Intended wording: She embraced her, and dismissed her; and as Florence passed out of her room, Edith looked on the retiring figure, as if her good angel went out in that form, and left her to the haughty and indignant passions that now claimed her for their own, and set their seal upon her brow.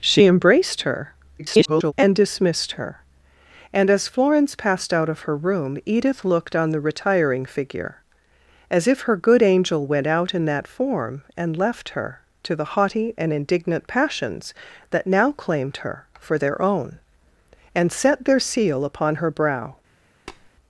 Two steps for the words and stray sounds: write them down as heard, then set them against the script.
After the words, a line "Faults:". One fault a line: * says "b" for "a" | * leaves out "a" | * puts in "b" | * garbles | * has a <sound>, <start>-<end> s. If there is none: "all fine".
She embraced her, [garbled] and dismissed her; and as Florence passed out of her room, Edith looked on the retiring figure, as if her good angel went out in that form, and left her to the haughty and indignant passions that now claimed her for their own, and set their seal upon her brow.
Faults:
* garbles
* has a tap, 20.3-20.5 s